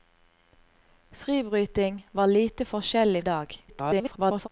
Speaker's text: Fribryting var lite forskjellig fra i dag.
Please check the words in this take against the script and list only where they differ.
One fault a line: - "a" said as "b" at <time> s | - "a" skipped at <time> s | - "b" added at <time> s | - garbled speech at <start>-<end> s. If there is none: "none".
- "fra" skipped at 3.2 s
- garbled speech at 3.7-4.5 s